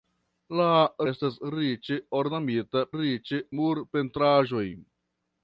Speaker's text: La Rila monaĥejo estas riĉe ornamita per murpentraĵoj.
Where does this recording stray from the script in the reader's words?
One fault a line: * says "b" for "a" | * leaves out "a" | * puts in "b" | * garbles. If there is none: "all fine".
* leaves out "Rila monaĥejo"
* says "riĉe" for "per"